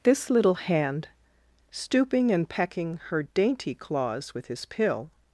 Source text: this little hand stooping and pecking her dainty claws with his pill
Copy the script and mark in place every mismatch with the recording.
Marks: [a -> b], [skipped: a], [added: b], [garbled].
this little hand stooping and pecking her dainty claws with his pill